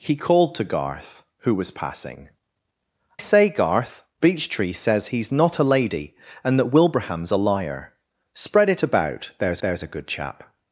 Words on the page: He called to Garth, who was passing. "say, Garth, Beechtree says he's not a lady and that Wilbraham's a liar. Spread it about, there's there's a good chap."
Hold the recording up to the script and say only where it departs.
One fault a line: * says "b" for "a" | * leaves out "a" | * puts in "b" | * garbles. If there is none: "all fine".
all fine